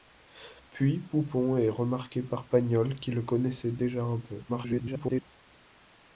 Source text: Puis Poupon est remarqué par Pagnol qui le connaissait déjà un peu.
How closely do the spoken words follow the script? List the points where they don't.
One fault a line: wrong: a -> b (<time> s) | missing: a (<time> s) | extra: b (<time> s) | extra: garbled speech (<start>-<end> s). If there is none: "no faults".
extra: garbled speech (4.5-5.3 s)